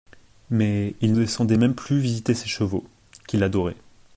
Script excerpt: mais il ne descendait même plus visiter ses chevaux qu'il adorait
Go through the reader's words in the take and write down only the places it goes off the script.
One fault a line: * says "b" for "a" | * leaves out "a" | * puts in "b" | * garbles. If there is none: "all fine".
* leaves out "ne"